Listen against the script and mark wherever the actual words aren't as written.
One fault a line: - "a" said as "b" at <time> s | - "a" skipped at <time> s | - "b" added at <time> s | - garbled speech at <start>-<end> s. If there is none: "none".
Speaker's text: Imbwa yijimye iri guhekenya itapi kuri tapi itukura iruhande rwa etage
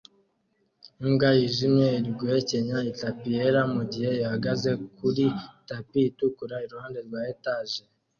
- "yera mugihe ihagaze" added at 3.4 s